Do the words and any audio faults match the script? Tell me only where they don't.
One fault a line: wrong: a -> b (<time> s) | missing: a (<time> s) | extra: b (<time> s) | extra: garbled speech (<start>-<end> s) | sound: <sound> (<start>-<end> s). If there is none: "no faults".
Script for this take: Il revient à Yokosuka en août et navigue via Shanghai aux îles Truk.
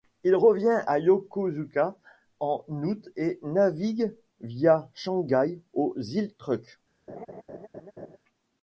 sound: laugh (7.1-8.2 s)